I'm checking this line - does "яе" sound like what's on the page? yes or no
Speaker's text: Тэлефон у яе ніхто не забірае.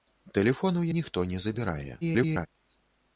no